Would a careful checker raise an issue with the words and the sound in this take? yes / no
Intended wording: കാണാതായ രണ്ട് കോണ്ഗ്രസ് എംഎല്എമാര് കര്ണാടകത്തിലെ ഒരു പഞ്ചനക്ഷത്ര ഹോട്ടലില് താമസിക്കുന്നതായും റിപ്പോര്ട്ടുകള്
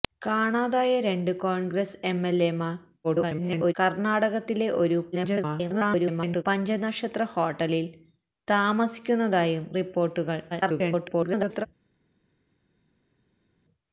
yes